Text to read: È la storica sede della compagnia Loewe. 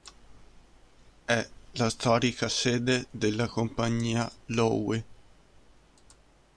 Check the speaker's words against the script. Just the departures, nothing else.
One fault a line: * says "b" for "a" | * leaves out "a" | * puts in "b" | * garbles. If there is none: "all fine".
all fine